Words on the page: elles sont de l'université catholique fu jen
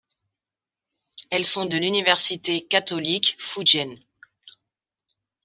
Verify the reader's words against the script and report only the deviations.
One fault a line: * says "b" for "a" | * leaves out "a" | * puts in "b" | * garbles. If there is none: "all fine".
all fine